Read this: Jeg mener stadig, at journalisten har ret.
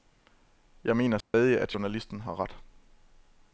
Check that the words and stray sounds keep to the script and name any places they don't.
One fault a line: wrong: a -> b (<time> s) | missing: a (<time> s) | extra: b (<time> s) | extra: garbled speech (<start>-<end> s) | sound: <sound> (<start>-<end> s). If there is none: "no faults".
sound: dropout (1.2-1.3 s)